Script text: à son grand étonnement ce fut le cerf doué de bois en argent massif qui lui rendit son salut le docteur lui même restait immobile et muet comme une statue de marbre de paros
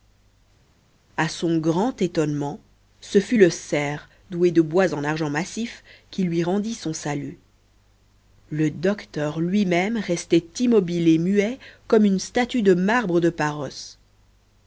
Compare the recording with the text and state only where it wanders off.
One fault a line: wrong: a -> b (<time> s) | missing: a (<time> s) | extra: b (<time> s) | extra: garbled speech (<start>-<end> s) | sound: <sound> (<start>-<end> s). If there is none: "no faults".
no faults